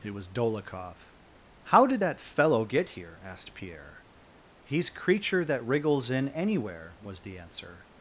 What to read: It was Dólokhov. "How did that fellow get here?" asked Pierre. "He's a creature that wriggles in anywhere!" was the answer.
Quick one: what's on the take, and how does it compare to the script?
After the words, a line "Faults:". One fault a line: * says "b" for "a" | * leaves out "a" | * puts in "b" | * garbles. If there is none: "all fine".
It was Dólokhov. "How did that fellow get here?" asked Pierre. "He's creature that wriggles in anywhere!" was the answer.
Faults:
* leaves out "a"